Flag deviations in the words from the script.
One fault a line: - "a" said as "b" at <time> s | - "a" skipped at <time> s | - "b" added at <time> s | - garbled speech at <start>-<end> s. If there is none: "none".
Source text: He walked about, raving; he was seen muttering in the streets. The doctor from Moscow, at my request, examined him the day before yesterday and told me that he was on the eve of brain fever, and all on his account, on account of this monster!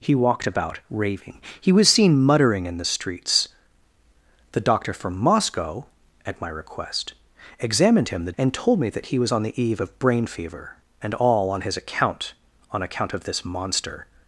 - "day before yesterday" skipped at 8.3 s